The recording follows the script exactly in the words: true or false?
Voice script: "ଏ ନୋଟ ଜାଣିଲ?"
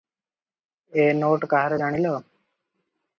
false